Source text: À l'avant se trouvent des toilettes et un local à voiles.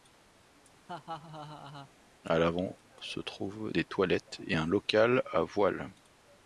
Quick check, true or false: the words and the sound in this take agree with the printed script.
false